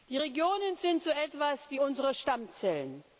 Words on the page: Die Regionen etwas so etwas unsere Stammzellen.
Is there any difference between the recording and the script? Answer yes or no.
yes